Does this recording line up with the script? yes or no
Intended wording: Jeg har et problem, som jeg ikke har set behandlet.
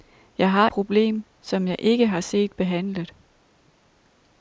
no